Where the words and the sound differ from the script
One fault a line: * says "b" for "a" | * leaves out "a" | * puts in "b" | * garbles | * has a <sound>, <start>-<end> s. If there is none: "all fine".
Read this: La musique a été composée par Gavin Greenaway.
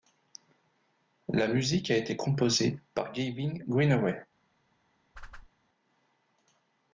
* has a whoosh, 5.1-5.5 s